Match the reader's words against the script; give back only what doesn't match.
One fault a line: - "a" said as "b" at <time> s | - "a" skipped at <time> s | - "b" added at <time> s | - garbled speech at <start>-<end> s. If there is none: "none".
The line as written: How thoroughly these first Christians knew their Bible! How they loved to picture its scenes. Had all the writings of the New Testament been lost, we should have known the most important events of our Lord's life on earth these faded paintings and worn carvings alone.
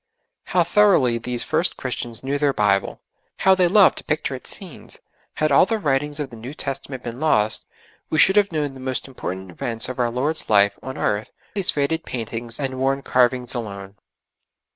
none